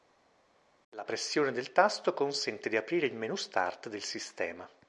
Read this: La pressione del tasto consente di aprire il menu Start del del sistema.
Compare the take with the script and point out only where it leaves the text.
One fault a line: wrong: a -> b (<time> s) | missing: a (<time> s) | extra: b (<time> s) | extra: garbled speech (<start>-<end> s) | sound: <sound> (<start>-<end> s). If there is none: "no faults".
missing: del (4.0 s)